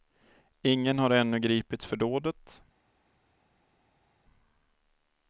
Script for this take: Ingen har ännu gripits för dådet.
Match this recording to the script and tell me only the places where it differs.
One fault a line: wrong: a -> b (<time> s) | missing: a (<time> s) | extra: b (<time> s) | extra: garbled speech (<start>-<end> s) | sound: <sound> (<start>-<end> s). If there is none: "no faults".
no faults